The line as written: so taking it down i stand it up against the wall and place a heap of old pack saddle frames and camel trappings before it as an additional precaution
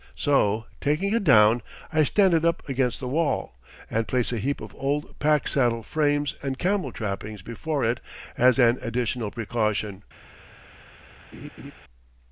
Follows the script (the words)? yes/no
yes